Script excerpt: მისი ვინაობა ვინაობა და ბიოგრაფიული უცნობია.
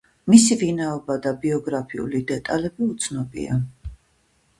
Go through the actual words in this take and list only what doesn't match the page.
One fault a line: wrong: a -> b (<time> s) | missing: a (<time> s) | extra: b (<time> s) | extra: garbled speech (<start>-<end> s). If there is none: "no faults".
missing: ვინაობა (1.2 s)
extra: დეტალები (2.3 s)